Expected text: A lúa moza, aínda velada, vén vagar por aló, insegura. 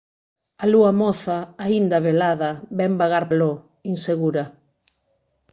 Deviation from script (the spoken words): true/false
true